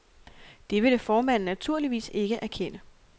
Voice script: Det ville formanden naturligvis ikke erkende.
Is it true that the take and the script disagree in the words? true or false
false